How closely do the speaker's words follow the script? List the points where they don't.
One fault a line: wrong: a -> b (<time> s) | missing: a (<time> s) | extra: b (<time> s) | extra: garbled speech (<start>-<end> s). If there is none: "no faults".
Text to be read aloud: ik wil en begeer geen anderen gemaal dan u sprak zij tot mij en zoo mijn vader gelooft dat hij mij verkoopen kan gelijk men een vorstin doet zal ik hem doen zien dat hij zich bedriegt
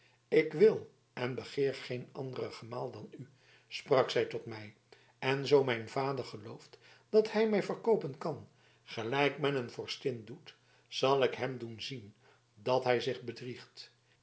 no faults